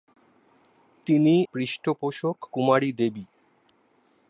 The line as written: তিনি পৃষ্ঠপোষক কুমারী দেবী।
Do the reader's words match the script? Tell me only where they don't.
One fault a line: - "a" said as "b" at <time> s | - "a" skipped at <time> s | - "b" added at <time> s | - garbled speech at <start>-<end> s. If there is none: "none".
none